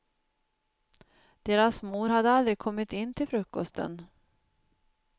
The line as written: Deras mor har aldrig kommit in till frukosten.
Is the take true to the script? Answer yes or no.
no